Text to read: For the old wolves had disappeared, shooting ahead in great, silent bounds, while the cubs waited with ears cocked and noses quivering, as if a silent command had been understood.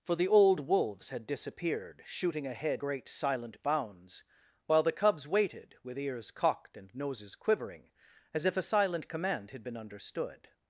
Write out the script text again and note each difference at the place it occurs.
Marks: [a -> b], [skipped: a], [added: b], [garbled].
For the old wolves had disappeared, shooting ahead [skipped: in] great, silent bounds, while the cubs waited with ears cocked and noses quivering, as if a silent command had been understood.